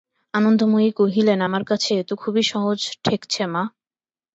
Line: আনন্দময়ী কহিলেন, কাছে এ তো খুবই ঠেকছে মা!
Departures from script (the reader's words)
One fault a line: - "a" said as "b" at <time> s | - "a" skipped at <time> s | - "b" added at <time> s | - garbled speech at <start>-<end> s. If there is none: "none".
- "আমার" added at 1.5 s
- "সহজ" added at 2.5 s